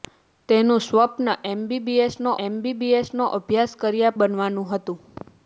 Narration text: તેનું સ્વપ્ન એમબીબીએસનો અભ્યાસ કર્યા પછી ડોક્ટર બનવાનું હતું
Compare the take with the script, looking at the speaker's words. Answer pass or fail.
fail